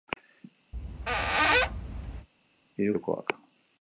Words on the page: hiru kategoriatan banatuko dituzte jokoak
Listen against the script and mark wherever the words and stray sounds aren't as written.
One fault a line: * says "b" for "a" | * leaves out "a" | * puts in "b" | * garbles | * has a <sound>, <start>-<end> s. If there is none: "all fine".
* has a squeak, 0.7-2.3 s
* leaves out "kategoriatan banatuko dituzte"